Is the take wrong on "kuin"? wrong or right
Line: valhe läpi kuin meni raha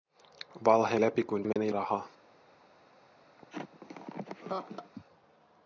right